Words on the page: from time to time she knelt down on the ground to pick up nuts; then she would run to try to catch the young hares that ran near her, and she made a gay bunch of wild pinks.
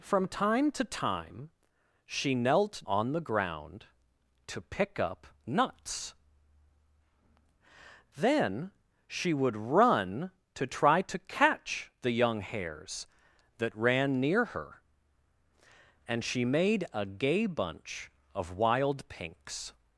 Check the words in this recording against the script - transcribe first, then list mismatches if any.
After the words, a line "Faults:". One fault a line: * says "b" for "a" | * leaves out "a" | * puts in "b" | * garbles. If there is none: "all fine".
from time to time she knelt on the ground to pick up nuts; then she would run to try to catch the young hares that ran near her, and she made a gay bunch of wild pinks.
Faults:
* leaves out "down"